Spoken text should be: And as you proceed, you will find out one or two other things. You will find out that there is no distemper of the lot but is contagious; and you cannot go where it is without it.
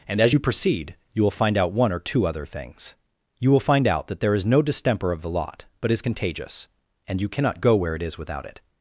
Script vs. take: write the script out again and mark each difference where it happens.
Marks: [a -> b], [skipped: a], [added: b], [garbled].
And as you proceed, you will find out one or two other things. You will find out that there is no distemper of the lot but is contagious; and you cannot go where it is without it.